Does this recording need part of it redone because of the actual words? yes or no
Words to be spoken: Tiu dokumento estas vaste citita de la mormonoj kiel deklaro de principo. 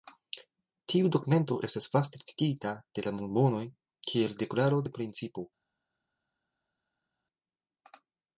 no